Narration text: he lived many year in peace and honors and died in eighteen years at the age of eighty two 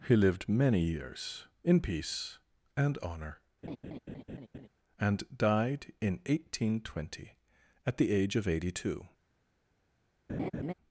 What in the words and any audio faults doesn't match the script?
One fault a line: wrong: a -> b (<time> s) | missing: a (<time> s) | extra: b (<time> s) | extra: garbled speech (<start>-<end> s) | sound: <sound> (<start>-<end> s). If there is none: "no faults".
wrong: year -> years (0.8 s)
wrong: honors -> honor (3.0 s)
sound: laugh (3.6-4.7 s)
wrong: years -> twenty (6.8 s)
sound: laugh (10.3-10.7 s)